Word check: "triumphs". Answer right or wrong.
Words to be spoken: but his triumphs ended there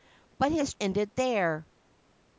wrong